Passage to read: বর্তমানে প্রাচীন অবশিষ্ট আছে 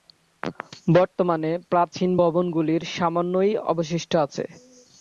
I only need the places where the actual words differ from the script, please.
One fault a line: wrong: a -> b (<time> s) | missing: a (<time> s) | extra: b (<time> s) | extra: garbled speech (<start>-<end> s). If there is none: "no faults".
extra: ভবনগুলির সামান্যই (2.2 s)